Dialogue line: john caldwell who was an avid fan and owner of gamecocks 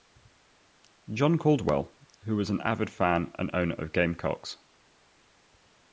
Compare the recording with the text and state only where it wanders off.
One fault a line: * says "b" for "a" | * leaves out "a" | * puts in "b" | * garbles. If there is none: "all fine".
all fine